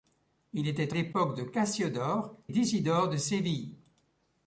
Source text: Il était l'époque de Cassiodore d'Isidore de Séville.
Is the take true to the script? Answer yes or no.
yes